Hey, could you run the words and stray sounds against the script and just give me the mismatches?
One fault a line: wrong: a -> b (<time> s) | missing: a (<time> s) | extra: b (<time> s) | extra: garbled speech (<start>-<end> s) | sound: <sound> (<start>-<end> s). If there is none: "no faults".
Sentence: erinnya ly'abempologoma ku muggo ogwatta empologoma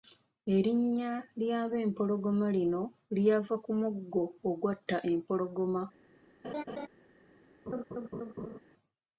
extra: lino lyava (2.6 s)
sound: laugh (6.4-6.9 s)
sound: laugh (7.7-8.6 s)